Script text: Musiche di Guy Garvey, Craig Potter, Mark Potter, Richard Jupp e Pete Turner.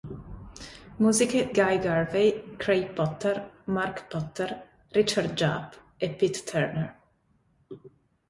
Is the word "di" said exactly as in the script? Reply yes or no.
no